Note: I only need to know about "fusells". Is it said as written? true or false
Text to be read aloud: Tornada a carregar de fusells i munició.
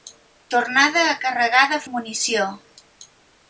false